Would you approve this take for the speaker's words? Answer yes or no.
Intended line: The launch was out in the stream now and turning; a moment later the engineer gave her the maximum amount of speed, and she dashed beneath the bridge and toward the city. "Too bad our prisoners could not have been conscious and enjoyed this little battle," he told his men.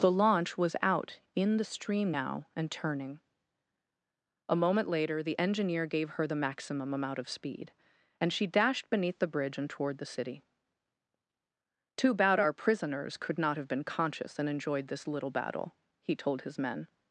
yes